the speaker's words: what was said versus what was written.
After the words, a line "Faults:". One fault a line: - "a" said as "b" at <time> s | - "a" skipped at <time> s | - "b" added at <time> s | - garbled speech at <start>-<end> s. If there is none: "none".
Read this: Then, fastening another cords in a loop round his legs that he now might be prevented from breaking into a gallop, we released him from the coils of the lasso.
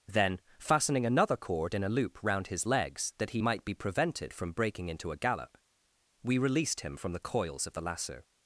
Then, fastening another cord in a loop round his legs that he might be prevented from breaking into a gallop, we released him from the coils of the lasso.
Faults:
- "cords" said as "cord" at 1.4 s
- "now" skipped at 3.4 s